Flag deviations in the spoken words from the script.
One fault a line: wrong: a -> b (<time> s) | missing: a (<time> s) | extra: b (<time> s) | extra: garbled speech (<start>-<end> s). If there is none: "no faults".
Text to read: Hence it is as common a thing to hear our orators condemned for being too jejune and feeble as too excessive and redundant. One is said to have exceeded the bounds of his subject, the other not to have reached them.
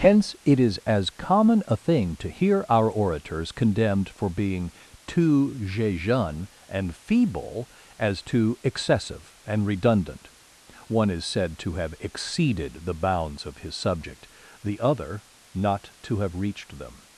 no faults